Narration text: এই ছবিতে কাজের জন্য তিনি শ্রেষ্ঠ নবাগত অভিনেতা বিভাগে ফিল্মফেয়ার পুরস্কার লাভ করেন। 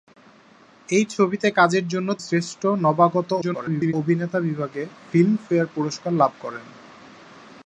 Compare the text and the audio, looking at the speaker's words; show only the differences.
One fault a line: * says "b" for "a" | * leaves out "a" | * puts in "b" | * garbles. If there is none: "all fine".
* leaves out "তিনি"
* garbles